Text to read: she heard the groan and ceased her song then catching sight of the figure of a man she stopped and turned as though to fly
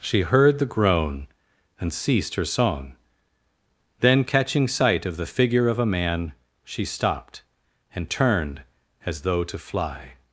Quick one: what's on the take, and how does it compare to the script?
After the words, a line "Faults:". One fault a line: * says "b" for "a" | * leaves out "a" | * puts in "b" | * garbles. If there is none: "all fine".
she heard the groan and ceased her song then catching sight of the figure of a man she stopped and turned as though to fly
Faults:
all fine